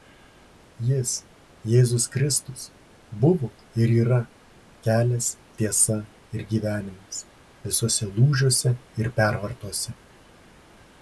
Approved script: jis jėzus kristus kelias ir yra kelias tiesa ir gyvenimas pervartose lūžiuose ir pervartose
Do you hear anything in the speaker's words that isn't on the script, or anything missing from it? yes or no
yes